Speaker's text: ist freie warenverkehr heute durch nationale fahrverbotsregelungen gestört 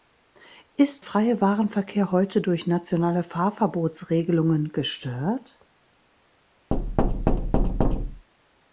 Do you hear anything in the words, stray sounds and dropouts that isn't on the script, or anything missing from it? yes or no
yes